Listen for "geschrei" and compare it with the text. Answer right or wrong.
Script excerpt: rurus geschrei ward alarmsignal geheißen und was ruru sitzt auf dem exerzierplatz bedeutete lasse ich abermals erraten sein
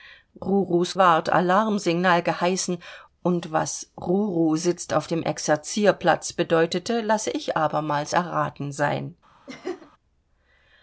wrong